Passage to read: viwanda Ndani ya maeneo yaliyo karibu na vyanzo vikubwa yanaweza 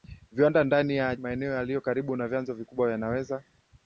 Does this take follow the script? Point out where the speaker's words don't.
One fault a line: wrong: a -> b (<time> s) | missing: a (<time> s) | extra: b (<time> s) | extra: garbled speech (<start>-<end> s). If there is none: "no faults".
no faults